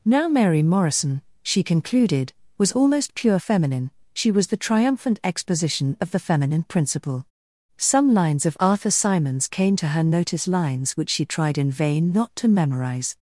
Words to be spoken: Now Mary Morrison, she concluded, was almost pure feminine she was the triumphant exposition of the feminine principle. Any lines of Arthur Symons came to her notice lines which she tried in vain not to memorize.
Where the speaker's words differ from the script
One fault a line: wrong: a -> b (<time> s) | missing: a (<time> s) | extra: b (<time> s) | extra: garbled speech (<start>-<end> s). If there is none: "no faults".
wrong: Any -> Some (7.8 s)